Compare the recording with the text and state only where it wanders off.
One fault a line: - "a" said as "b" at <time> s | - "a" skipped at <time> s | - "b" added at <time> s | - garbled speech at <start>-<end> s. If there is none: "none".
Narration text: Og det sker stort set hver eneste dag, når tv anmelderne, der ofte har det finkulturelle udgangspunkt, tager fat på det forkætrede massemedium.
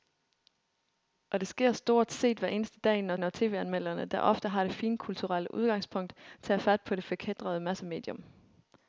- "når" added at 3.1 s